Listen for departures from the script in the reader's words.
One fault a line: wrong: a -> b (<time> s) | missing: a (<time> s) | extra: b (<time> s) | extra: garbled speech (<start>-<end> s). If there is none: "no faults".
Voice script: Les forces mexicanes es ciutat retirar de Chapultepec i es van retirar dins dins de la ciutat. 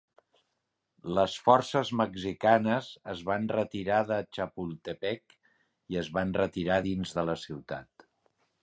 wrong: ciutat -> van (3.3 s)
missing: dins (7.2 s)